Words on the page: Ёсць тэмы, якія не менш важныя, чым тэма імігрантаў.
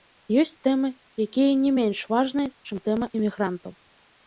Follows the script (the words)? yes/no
yes